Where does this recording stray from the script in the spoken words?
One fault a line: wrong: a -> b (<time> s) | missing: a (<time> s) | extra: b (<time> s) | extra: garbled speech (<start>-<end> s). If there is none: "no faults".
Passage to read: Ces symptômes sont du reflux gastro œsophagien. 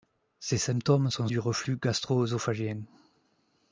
no faults